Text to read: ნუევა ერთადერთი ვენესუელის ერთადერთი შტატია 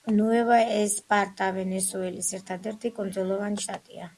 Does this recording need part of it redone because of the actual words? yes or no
yes